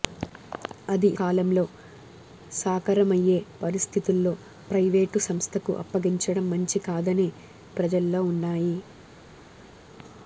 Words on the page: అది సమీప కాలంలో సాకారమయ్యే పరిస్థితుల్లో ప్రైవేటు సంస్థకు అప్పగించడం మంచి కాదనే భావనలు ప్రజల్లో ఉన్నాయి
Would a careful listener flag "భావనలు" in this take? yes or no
yes